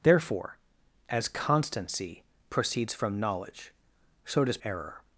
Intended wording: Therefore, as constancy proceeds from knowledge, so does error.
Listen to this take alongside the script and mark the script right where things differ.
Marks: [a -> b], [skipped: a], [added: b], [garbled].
Therefore, as constancy proceeds from knowledge, so does error.